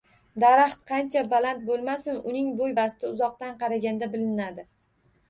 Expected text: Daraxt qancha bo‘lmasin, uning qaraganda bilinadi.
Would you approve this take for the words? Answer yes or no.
no